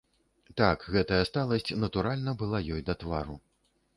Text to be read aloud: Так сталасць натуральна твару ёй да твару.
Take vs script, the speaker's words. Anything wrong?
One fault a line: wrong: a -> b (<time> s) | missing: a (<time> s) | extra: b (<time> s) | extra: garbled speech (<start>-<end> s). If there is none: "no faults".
extra: гэтая (0.9 s)
wrong: твару -> была (2.4 s)